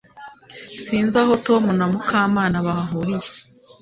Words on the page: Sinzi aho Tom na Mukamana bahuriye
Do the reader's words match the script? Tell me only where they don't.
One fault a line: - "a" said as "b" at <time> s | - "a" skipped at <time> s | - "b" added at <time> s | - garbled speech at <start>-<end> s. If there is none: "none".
none